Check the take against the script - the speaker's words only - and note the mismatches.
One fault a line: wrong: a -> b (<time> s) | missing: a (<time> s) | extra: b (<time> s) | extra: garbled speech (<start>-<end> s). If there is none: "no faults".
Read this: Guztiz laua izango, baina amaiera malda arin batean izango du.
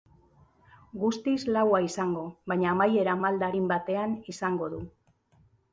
no faults